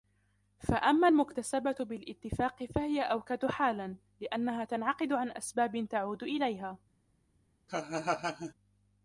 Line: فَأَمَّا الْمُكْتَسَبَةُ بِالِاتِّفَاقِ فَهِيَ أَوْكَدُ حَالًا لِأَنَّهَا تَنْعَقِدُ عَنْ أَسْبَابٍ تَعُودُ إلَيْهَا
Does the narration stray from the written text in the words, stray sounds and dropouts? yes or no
yes